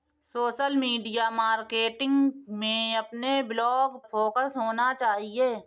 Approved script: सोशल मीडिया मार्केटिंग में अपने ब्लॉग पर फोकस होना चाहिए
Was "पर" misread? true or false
true